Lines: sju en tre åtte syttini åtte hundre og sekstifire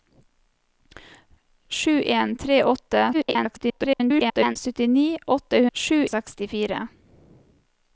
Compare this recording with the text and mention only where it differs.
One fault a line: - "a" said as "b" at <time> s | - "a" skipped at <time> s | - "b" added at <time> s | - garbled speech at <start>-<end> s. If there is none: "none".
- garbled speech at 3.1-4.6 s
- "hundre" said as "sju" at 5.7 s